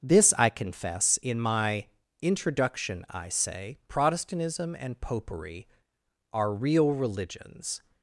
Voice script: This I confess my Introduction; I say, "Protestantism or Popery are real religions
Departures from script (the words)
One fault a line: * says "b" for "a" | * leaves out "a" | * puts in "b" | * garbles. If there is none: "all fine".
* puts in "in"
* says "and" for "or"